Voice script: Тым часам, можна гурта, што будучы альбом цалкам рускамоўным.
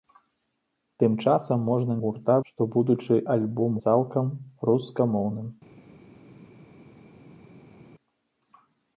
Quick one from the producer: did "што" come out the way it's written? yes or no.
yes